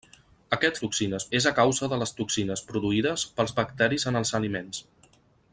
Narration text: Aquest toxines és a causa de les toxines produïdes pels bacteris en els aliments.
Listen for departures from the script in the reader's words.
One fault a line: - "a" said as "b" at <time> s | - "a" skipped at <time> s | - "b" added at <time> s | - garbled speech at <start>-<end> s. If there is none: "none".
none